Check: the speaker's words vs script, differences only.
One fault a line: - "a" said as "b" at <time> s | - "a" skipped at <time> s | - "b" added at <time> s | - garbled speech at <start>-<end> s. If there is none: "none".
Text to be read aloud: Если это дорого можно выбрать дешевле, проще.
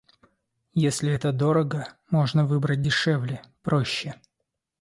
none